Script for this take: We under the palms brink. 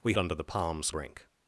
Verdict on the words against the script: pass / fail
pass